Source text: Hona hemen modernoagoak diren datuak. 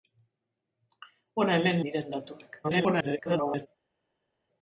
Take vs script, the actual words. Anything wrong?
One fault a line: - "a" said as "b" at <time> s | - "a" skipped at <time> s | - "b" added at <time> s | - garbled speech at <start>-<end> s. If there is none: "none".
- "modernoagoak" skipped at 1.8 s
- garbled speech at 2.6-3.7 s